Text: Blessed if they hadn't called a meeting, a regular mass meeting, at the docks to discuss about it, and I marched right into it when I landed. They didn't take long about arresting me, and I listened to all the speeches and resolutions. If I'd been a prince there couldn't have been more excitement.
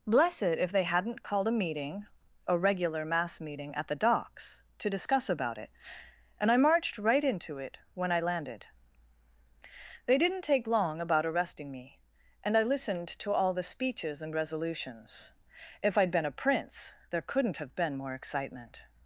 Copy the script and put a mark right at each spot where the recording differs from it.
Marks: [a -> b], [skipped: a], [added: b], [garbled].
Blessed if they hadn't called a meeting, a regular mass meeting, at the docks to discuss about it, and I marched right into it when I landed. They didn't take long about arresting me, and I listened to all the speeches and resolutions. If I'd been a prince there couldn't have been more excitement.